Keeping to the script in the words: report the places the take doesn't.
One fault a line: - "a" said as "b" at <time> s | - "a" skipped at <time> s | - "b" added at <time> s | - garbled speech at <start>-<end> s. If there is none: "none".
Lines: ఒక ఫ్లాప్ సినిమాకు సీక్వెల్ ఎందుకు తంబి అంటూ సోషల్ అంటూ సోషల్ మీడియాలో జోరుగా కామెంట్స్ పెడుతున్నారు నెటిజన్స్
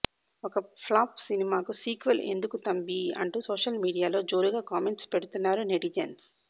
- "అంటూ సోషల్" skipped at 3.8 s